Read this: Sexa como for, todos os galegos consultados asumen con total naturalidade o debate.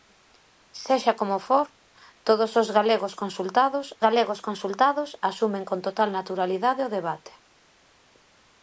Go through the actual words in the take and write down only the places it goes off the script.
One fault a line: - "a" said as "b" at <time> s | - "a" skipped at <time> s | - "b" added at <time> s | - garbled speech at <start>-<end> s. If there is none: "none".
- "galegos consultados" added at 4.0 s